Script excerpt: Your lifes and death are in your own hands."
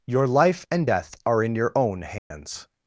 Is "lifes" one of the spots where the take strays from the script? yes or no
yes